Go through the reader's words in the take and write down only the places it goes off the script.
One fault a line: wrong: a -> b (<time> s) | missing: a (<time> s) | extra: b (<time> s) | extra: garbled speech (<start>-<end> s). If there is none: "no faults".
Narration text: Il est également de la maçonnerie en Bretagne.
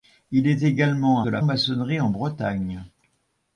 no faults